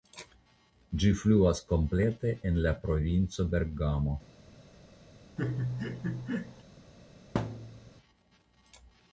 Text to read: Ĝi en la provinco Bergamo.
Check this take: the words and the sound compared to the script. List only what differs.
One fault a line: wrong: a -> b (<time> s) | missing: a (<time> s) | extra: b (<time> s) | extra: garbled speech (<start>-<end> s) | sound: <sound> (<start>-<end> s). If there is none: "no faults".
extra: fluas komplete (1.2 s)
sound: laugh (5.4-6.6 s)
sound: thud (7.3-7.9 s)